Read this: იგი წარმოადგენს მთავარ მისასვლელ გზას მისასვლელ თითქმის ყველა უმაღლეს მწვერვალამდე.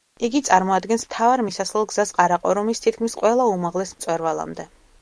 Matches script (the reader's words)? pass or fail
fail